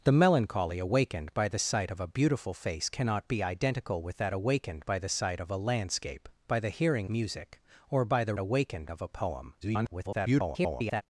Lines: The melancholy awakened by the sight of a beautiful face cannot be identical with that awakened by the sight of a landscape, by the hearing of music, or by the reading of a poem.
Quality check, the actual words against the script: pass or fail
fail